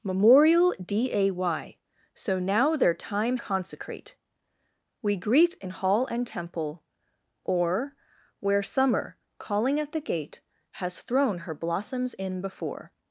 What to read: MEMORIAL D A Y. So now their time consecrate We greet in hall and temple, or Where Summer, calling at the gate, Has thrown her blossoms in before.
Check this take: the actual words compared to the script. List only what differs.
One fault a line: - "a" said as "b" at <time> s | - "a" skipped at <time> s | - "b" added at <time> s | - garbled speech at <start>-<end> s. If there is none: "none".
none